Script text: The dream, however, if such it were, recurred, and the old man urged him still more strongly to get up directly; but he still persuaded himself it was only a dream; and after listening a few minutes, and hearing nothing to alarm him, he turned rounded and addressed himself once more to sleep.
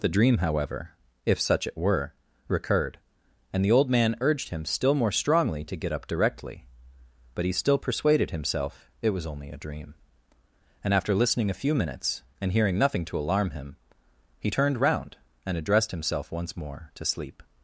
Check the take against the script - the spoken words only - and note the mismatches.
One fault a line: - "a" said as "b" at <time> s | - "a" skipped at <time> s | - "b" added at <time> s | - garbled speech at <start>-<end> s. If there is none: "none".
- "rounded" said as "round" at 14.8 s